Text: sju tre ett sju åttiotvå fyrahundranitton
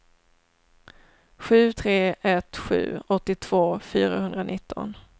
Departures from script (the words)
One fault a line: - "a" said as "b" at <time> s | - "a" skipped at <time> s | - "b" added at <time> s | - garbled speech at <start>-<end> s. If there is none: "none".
none